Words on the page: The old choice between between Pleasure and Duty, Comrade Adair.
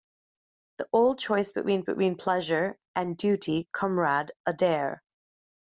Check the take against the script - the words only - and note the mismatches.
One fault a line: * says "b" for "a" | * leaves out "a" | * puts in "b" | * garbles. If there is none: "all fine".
all fine